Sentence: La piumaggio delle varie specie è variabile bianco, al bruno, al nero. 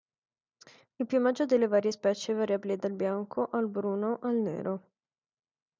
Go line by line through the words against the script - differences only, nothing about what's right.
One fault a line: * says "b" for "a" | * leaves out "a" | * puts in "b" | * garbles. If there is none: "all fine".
* says "Il" for "La"
* puts in "dal"